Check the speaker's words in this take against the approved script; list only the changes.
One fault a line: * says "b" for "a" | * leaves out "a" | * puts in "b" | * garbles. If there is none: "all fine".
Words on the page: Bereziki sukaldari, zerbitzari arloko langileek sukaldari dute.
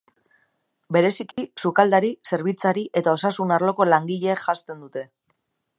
* puts in "eta osasun"
* says "janzten" for "sukaldari"